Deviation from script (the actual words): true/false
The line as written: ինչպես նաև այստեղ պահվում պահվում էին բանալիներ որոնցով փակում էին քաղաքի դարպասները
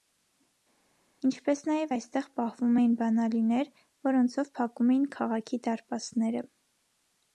true